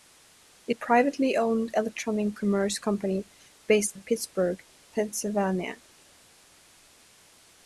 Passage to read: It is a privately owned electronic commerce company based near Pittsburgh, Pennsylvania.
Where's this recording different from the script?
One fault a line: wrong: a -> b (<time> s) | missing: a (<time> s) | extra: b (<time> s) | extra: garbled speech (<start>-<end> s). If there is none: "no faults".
missing: is (0.8 s)
missing: near (4.0 s)